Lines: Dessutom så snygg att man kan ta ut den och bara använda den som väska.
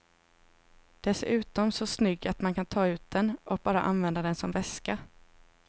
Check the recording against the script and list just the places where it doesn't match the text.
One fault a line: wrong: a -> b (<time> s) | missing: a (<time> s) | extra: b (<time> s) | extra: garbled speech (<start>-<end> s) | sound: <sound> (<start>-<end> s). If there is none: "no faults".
no faults